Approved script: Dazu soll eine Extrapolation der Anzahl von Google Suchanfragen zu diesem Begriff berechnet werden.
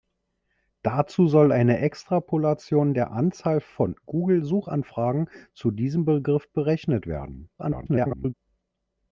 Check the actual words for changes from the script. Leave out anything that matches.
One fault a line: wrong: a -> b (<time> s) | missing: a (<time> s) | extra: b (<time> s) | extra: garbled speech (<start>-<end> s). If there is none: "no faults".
extra: garbled speech (7.6-8.3 s)